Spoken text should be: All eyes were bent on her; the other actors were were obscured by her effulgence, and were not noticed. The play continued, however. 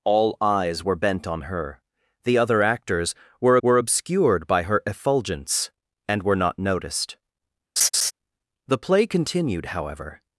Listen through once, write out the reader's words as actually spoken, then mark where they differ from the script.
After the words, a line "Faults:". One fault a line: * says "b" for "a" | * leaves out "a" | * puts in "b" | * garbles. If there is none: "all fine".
All eyes were bent on her; the other actors were were obscured by her effulgence, and were not noticed. The play continued, however.
Faults:
all fine